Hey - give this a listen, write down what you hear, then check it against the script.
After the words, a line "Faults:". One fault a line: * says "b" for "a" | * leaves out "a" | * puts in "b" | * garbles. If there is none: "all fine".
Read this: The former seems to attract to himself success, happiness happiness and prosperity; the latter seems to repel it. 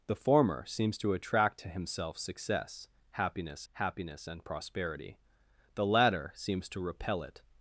The former seems to attract to himself success, happiness happiness and prosperity; the latter seems to repel it.
Faults:
all fine